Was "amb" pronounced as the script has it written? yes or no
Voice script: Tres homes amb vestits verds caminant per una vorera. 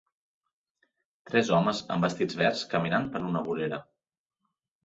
yes